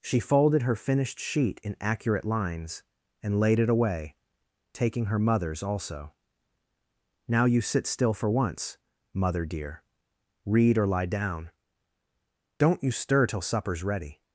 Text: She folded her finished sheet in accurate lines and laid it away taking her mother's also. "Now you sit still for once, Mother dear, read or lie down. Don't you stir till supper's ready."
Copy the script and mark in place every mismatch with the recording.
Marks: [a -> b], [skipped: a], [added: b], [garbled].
She folded her finished sheet in accurate lines and laid it away taking her mother's also. "Now you sit still for once, Mother dear, read or lie down. Don't you stir till supper's ready."